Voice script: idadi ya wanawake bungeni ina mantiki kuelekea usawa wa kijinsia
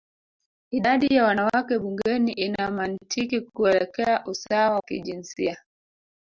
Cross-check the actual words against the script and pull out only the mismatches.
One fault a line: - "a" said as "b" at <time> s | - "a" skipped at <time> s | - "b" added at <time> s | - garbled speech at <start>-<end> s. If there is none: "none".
- "wa" skipped at 4.8 s